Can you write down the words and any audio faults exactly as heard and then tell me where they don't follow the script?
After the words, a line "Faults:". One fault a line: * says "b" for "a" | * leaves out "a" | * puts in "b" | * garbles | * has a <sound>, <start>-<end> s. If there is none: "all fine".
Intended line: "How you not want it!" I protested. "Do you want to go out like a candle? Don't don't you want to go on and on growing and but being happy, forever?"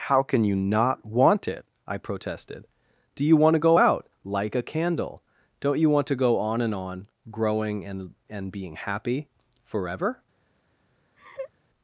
"How can you not want it!" I protested. "Do you want to go out like a candle? Don't you want to go on and on growing and and being happy, forever?"
Faults:
* puts in "can"
* leaves out "don't"
* says "and" for "but"
* has a laugh, 11.2-11.5 s